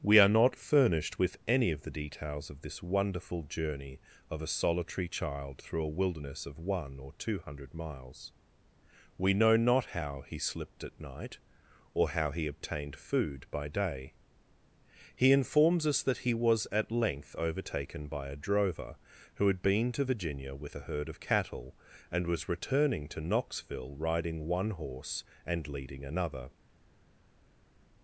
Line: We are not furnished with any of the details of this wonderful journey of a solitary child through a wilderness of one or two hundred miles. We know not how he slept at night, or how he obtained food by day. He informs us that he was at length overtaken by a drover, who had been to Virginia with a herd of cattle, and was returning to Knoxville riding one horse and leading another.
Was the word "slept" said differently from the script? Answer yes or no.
yes